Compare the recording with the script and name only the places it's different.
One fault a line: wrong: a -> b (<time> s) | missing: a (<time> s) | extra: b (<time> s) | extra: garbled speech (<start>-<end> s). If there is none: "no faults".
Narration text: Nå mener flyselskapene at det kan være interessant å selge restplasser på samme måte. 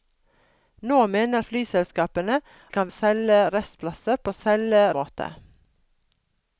missing: at (2.4 s)
missing: være interessant (2.9 s)
wrong: samme -> selge (4.4 s)